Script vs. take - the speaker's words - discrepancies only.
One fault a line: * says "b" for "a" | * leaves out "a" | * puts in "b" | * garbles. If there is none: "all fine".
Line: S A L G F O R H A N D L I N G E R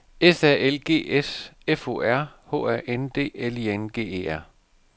* puts in "S"